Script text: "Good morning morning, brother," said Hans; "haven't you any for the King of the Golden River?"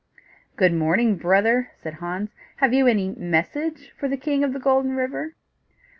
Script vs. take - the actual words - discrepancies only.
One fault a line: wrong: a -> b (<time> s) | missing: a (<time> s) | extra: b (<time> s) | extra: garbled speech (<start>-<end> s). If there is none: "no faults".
missing: morning (1.1 s)
wrong: haven't -> have (2.5 s)
extra: message (3.1 s)